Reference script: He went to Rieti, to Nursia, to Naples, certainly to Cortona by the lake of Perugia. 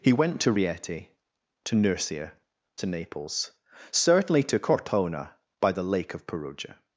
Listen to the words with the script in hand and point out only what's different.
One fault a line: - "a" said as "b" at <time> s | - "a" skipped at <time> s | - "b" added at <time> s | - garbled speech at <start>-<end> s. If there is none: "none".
none